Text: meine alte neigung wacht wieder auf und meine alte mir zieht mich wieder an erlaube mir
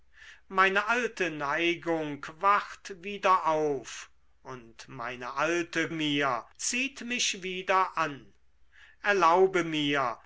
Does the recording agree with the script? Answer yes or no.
yes